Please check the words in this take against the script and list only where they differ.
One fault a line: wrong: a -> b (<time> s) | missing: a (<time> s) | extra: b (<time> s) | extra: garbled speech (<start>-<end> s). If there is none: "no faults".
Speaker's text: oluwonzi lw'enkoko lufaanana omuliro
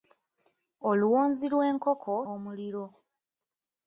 missing: lufaanana (2.1 s)